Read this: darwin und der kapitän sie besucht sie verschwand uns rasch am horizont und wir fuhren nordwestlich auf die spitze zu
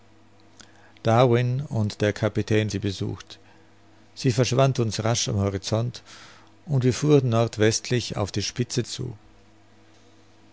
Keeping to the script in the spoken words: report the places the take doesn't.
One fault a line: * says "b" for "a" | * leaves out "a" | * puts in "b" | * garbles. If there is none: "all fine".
all fine